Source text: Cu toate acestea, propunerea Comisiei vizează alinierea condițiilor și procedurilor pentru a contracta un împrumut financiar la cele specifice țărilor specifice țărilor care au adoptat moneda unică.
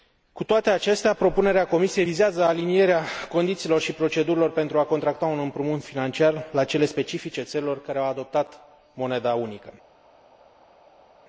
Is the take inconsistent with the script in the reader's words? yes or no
yes